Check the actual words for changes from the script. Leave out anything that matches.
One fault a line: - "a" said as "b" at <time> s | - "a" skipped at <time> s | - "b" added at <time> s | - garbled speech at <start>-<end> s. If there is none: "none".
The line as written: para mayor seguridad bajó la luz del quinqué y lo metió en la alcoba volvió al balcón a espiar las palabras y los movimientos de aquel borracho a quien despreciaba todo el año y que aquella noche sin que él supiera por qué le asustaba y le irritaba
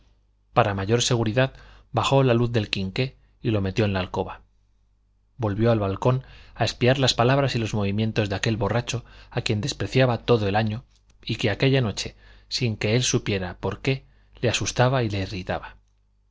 none